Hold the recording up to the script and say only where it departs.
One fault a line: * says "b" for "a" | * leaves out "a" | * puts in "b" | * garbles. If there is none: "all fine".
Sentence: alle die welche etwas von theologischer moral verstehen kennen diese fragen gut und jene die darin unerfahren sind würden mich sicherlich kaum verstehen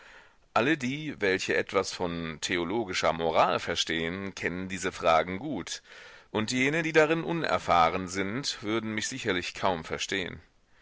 all fine